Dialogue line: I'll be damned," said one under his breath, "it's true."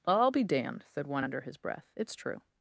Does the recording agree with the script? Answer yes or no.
yes